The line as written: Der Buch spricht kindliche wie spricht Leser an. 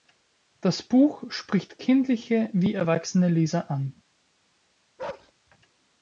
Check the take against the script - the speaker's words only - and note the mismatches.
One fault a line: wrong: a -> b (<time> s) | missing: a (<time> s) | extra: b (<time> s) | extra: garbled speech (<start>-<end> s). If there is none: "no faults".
wrong: Der -> Das (0.6 s)
wrong: spricht -> erwachsene (2.7 s)